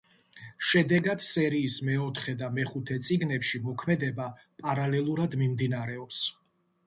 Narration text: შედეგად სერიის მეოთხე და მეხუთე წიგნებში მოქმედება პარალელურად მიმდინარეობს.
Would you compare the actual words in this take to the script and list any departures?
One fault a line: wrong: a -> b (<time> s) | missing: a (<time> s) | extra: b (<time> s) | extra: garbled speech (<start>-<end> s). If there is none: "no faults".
no faults